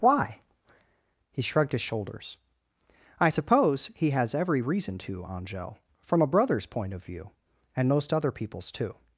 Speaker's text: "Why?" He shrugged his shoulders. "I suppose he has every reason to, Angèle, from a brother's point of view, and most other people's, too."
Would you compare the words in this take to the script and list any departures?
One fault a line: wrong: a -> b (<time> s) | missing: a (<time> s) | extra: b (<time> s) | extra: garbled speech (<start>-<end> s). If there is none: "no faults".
no faults